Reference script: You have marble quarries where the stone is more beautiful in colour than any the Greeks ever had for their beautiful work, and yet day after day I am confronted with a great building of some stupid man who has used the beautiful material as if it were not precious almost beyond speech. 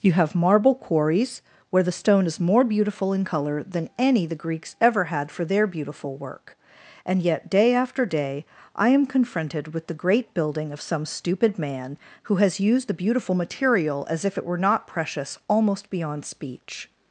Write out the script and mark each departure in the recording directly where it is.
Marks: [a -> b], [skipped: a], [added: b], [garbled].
You have marble quarries where the stone is more beautiful in colour than any the Greeks ever had for their beautiful work, and yet day after day I am confronted with [a -> the] great building of some stupid man who has used the beautiful material as if it were not precious almost beyond speech.